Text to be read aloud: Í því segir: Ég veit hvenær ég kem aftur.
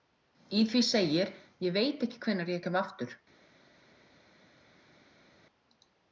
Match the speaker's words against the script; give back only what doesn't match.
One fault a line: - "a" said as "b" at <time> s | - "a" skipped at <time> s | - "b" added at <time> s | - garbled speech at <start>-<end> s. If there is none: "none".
- "ekki" added at 2.1 s